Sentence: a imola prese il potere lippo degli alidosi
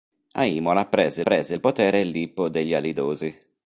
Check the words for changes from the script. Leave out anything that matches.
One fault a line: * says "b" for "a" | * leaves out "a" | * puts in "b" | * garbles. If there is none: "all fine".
* puts in "prese"